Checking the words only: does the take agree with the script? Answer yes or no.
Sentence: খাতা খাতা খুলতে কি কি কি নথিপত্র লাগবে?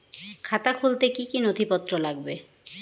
no